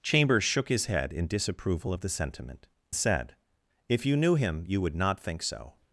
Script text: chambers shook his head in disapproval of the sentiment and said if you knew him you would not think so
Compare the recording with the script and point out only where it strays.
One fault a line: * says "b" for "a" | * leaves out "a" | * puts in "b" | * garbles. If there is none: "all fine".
* leaves out "and"